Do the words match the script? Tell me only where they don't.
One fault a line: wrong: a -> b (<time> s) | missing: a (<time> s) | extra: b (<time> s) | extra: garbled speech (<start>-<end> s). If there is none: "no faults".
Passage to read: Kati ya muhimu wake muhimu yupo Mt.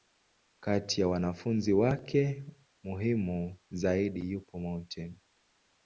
wrong: muhimu -> wanafunzi (1.1 s)
extra: zaidi (3.7 s)